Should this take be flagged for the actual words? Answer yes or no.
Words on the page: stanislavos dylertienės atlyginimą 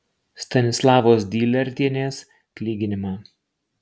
no